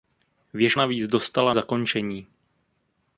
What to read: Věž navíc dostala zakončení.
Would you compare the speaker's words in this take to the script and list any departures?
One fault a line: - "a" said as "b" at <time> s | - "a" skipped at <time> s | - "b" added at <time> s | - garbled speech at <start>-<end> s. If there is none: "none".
none